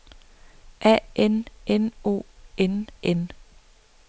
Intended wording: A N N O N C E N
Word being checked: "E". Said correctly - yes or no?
no